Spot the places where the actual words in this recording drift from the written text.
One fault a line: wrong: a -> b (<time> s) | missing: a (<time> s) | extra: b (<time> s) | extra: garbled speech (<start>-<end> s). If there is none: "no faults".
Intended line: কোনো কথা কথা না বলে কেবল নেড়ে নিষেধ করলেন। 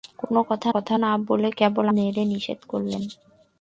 no faults